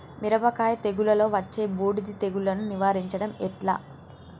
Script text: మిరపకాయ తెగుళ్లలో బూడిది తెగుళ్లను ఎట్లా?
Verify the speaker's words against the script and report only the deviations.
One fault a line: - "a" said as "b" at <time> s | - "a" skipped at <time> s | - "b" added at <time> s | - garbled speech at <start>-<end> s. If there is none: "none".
- "వచ్చే" added at 1.4 s
- "నివారించడం" added at 2.7 s